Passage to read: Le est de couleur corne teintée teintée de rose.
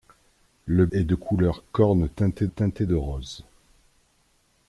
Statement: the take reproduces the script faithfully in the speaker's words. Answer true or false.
true